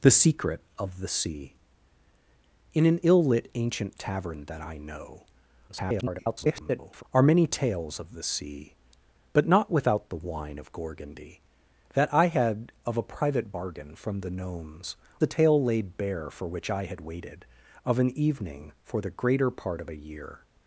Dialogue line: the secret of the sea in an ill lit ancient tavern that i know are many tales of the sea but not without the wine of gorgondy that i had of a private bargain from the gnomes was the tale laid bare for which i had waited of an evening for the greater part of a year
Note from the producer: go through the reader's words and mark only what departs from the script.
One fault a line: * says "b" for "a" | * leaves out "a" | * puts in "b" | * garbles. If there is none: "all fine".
* garbles
* leaves out "was"